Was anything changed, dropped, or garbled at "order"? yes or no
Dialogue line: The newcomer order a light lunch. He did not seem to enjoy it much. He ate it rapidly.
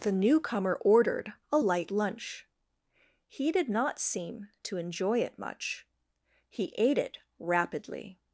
yes